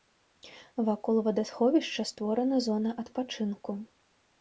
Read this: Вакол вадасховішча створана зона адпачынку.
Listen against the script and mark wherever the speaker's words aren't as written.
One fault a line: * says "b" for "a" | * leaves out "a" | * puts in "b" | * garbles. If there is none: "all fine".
all fine